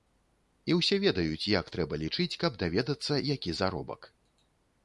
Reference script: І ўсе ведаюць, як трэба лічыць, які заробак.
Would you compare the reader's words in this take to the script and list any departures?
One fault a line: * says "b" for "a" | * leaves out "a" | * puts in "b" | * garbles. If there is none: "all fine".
* puts in "каб даведацца"